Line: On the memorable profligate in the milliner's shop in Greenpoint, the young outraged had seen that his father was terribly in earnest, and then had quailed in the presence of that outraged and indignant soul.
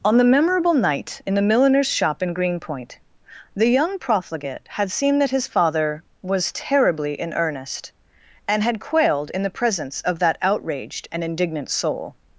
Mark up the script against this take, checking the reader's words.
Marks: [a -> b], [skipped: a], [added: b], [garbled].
On the memorable [profligate -> night] in the milliner's shop in Greenpoint, the young [outraged -> profligate] had seen that his father was terribly in earnest, and [skipped: then] had quailed in the presence of that outraged and indignant soul.